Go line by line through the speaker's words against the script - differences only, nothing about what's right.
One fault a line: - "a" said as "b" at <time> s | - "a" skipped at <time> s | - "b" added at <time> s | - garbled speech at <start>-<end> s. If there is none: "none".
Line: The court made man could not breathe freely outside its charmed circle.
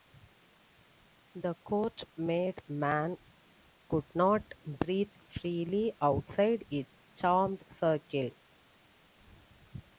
none